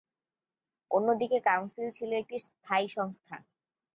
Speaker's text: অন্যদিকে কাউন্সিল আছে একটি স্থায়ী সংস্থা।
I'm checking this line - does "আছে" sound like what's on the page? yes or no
no